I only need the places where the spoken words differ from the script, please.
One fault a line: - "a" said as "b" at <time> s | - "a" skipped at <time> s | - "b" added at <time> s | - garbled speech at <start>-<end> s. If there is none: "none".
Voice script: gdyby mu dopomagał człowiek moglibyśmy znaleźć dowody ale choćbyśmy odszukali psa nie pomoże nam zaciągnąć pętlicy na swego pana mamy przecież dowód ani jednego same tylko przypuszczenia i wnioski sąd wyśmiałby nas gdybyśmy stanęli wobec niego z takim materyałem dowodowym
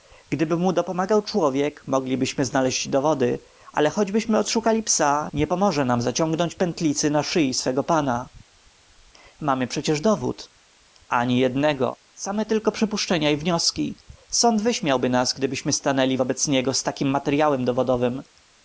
- "szyi" added at 7.2 s